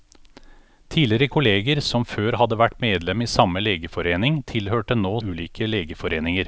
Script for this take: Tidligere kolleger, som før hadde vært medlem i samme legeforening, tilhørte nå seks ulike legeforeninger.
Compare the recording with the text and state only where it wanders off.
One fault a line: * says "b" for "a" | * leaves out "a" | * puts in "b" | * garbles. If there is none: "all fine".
* leaves out "seks"